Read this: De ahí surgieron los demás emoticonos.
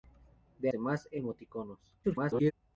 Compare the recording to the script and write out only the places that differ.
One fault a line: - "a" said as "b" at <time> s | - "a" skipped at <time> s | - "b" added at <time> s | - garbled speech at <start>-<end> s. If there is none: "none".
- "ahí surgieron los" skipped at 0.7 s
- garbled speech at 2.0-2.5 s